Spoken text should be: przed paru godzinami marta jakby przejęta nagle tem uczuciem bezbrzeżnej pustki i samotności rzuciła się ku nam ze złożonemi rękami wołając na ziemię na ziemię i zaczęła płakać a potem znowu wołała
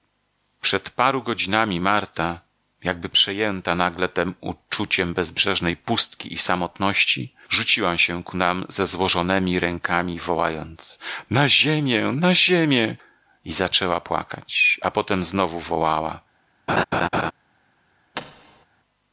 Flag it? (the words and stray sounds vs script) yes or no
yes